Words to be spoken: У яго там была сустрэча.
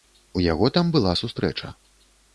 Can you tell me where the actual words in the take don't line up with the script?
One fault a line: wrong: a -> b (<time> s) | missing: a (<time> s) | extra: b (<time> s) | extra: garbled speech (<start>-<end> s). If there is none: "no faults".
no faults